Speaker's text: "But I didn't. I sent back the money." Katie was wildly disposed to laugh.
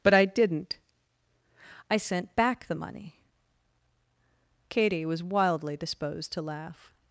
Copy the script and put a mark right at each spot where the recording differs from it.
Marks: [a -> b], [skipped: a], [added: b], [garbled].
"But I didn't. I sent back the money." Katie was wildly disposed to laugh.